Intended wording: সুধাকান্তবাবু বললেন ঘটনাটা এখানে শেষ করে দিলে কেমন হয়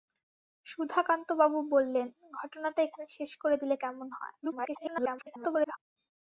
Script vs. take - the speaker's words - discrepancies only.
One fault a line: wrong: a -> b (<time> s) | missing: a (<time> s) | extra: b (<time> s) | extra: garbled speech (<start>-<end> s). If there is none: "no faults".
extra: garbled speech (4.4-5.8 s)